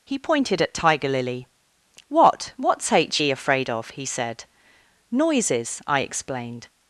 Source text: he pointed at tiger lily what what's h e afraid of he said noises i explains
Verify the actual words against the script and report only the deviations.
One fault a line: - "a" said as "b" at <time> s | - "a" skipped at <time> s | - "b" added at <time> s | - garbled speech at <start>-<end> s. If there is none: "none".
- "explains" said as "explained" at 6.0 s